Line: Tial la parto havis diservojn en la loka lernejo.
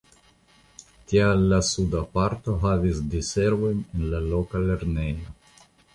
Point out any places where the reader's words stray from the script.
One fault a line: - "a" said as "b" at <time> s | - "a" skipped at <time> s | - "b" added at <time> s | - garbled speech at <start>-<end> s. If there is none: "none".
- "suda" added at 1.7 s